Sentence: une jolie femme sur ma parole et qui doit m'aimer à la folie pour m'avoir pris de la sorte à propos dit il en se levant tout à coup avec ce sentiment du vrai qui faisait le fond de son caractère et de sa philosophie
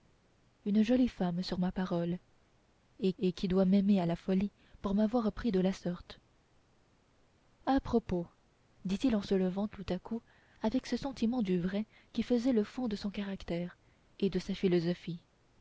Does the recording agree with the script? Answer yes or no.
no